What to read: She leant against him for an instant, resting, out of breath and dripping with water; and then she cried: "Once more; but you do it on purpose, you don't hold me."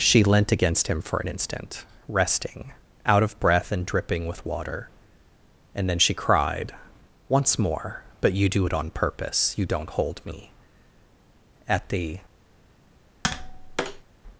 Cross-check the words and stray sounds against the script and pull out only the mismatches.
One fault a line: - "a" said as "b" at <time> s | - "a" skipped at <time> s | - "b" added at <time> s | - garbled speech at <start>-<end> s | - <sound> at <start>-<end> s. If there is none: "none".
- "At the" added at 11.7 s
- tap at 13.2-14.0 s